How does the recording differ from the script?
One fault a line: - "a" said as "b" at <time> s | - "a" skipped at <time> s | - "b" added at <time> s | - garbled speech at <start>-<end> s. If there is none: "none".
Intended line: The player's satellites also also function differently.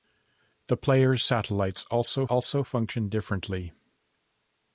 none